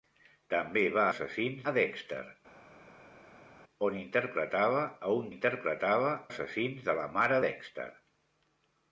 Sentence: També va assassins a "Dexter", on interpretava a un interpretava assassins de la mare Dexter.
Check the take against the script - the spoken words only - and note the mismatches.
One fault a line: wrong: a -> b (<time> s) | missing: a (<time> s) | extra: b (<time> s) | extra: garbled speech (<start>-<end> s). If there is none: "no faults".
no faults